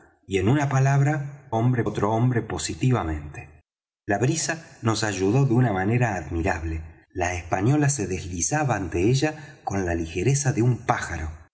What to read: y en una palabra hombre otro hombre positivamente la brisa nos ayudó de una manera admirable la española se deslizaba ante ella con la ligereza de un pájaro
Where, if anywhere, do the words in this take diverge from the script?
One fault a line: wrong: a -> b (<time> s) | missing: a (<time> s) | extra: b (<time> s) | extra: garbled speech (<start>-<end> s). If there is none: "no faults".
no faults